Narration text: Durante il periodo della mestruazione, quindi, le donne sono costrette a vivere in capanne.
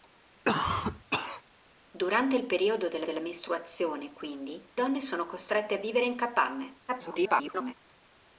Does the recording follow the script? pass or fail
fail